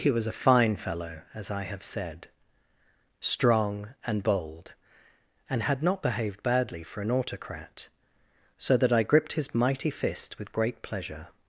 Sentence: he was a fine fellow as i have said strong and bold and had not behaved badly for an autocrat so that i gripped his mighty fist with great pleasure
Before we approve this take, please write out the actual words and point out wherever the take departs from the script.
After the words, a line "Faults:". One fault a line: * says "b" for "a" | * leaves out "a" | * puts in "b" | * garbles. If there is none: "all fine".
he was a fine fellow as i have said strong and bold and had not behaved badly for an autocrat so that i gripped his mighty fist with great pleasure
Faults:
all fine